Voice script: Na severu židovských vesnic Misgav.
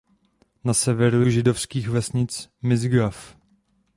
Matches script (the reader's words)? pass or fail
pass